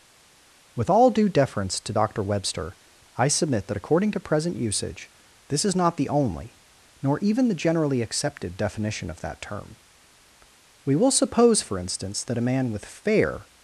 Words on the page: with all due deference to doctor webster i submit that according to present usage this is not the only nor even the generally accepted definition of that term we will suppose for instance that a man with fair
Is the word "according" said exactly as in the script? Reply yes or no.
yes